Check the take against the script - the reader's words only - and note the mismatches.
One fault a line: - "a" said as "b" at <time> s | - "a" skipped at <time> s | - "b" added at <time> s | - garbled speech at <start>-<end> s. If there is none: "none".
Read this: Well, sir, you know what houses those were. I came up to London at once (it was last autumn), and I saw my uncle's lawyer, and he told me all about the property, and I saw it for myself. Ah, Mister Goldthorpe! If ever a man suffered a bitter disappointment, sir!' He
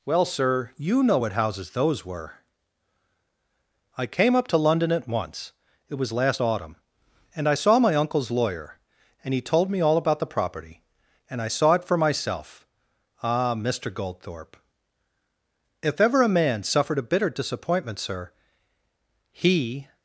none